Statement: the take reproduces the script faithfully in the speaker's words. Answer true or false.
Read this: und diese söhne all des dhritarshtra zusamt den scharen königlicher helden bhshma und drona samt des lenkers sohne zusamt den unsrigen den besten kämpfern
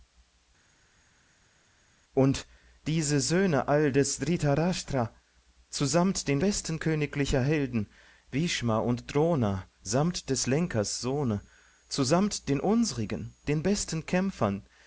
false